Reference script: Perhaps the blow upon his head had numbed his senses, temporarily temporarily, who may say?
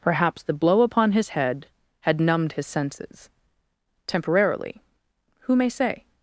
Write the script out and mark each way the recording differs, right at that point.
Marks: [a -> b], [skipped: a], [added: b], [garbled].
Perhaps the blow upon his head had numbed his senses, temporarily [skipped: temporarily,] who may say?